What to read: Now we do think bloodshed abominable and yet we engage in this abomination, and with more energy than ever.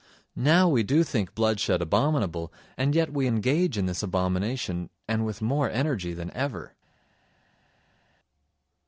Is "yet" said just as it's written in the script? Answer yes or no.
yes